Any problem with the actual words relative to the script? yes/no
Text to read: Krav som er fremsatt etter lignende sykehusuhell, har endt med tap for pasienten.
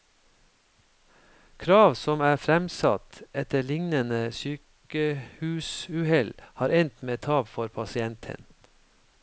no